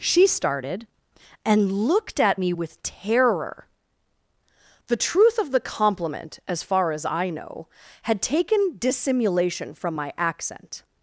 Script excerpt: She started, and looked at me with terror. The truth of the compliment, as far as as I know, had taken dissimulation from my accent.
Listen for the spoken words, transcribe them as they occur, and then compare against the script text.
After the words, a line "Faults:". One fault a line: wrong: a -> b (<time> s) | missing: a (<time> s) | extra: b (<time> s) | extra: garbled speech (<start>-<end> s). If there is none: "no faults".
She started, and looked at me with terror. The truth of the compliment, as far as I know, had taken dissimulation from my accent.
Faults:
missing: as (7.0 s)